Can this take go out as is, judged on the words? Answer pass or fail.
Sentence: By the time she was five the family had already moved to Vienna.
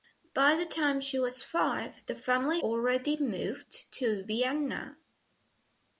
fail